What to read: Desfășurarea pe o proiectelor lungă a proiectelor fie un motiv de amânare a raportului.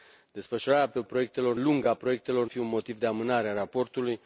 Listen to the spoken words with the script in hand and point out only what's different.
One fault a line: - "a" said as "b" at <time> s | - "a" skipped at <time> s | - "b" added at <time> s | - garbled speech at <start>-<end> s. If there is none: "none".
none